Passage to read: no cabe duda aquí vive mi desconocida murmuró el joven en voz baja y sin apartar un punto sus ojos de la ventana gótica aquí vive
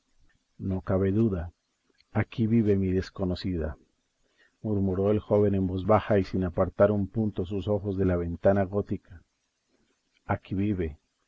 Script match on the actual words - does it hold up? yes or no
yes